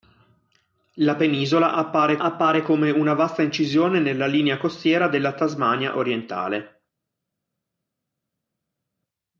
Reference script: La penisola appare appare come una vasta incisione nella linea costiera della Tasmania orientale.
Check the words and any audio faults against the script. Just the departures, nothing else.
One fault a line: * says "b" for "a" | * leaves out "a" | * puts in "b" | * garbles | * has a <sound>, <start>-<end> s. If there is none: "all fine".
all fine